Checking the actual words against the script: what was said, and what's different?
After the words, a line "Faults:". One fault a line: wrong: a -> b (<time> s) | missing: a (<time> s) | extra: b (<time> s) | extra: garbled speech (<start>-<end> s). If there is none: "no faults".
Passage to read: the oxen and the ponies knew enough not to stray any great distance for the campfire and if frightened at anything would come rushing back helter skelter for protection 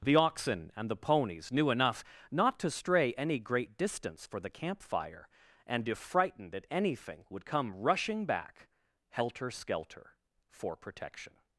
the oxen and the ponies knew enough not to stray any great distance for the campfire and if frightened at anything would come rushing back helter skelter for protection
Faults:
no faults